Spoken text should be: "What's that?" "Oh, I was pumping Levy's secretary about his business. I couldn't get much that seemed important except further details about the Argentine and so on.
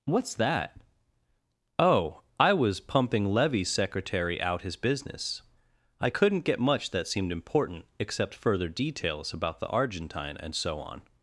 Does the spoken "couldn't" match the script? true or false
true